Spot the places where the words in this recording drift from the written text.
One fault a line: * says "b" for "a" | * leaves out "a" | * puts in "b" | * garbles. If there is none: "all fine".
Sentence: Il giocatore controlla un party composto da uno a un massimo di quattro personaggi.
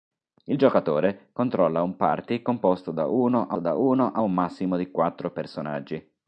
* puts in "da uno a"